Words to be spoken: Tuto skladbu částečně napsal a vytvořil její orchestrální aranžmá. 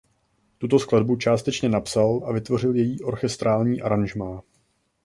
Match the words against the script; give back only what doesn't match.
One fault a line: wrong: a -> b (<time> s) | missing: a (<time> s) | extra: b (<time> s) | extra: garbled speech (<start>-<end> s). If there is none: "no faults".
no faults